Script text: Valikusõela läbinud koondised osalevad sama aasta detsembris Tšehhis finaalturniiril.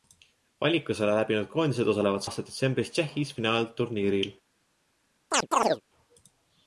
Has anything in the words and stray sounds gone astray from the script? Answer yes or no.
yes